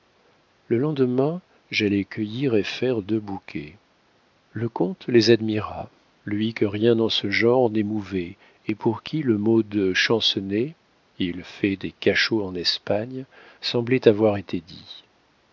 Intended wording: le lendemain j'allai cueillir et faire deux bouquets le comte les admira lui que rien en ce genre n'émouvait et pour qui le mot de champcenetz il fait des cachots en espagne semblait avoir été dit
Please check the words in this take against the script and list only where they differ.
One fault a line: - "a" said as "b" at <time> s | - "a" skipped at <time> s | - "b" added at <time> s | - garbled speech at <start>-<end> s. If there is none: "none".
none